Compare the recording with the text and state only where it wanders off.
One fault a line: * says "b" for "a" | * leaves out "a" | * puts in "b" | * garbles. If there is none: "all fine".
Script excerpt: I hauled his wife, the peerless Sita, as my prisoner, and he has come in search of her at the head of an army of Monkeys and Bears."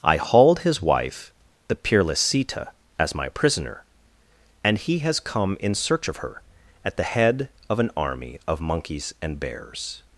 all fine